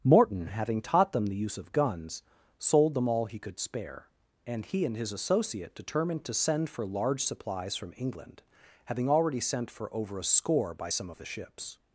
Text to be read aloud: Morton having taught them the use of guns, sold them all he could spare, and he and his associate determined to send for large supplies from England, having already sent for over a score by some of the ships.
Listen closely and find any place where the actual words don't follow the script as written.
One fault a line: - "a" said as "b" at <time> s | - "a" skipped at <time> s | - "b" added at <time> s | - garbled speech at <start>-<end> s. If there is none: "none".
none